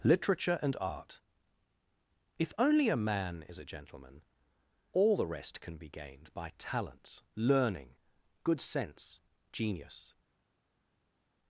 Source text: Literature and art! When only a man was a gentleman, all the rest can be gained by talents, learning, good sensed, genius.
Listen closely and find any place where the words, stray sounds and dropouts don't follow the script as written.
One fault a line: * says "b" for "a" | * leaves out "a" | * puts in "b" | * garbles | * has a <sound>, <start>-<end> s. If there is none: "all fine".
* says "If" for "When"
* says "is" for "was"
* says "sense" for "sensed"